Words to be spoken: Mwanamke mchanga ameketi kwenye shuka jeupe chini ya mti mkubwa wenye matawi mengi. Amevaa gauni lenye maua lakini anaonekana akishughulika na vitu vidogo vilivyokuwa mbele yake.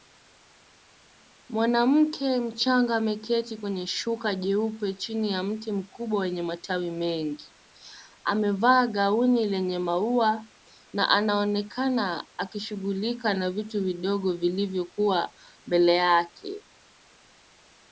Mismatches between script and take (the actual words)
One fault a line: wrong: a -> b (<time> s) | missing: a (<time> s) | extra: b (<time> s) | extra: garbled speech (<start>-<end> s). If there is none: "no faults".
wrong: lakini -> na (10.9 s)